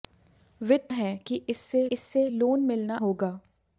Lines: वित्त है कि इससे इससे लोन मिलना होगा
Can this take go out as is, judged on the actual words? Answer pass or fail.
pass